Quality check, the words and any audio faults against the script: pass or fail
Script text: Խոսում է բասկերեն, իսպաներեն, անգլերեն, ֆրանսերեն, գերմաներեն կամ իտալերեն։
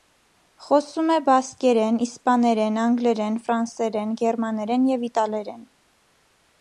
fail